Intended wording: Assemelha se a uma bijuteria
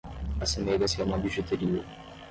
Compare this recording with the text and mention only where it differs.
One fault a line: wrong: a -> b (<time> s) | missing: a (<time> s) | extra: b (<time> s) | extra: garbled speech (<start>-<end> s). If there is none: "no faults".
no faults